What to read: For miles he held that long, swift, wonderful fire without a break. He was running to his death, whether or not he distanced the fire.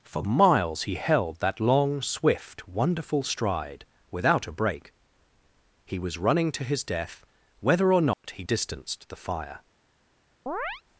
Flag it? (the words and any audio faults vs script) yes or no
yes